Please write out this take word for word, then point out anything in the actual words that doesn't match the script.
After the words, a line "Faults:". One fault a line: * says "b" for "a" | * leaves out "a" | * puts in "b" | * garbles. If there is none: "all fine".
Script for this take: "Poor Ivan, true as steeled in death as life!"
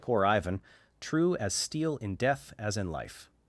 "Poor Ivan, true as steel in death as in life!"
Faults:
* says "steel" for "steeled"
* puts in "in"